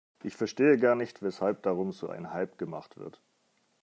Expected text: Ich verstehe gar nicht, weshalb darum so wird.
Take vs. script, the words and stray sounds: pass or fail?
fail